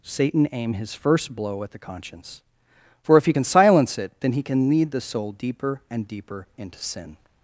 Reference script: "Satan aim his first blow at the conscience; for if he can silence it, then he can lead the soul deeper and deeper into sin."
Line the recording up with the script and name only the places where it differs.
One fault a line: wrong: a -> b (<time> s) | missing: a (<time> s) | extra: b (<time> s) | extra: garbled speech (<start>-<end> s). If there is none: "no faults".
no faults